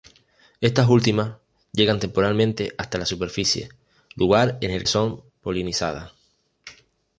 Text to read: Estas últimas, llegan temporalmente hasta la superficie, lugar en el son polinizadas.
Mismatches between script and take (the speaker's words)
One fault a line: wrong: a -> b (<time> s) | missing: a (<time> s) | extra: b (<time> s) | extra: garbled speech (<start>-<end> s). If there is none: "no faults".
no faults